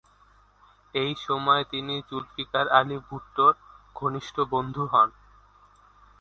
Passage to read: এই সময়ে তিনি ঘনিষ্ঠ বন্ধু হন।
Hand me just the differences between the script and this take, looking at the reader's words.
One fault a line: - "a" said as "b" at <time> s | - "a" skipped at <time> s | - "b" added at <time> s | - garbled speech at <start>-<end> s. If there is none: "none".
- "জুলফিকার আলী ভুট্টোর" added at 2.1 s